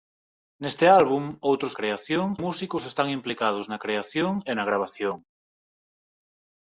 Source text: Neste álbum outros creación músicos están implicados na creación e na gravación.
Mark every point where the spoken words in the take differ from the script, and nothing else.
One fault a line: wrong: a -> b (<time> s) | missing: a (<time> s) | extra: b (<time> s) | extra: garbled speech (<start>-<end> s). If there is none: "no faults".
no faults